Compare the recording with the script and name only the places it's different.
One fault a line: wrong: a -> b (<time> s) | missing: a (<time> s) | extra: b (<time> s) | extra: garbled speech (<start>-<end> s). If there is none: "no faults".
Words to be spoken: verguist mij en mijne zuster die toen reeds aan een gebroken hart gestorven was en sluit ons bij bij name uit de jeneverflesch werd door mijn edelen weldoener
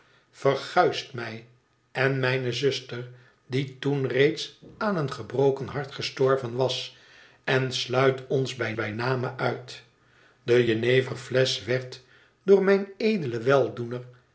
no faults